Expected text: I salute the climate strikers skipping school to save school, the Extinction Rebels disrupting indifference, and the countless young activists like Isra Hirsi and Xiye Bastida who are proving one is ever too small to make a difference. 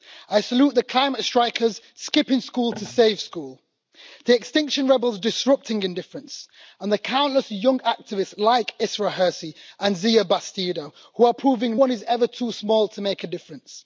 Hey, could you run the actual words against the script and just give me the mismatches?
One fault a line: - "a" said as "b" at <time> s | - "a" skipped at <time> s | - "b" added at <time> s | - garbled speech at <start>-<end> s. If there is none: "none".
none